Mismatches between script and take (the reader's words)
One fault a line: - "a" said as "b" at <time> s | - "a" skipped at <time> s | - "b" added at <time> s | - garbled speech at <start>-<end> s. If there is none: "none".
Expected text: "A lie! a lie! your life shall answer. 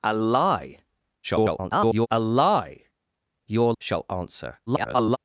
- garbled speech at 1.2-2.1 s
- "life" skipped at 3.7 s
- garbled speech at 4.7-5.2 s